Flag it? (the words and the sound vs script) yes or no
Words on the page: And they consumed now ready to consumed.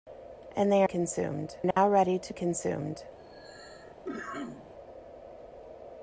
yes